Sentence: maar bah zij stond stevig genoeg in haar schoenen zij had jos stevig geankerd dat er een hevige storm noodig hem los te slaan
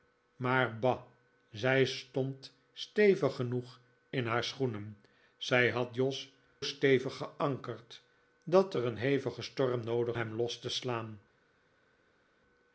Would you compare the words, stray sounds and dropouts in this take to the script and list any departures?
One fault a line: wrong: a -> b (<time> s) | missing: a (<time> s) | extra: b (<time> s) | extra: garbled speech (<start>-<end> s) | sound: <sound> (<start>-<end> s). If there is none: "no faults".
no faults